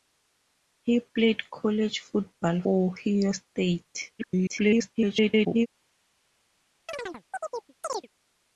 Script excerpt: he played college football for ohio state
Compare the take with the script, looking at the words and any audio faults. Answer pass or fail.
fail